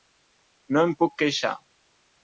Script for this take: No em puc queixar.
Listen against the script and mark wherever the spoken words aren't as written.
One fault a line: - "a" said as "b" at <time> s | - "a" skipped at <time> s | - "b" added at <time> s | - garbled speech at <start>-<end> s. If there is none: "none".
none